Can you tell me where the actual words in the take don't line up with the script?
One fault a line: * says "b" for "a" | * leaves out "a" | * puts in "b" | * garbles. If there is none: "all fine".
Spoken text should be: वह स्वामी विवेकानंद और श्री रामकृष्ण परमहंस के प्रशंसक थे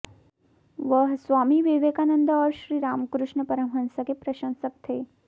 all fine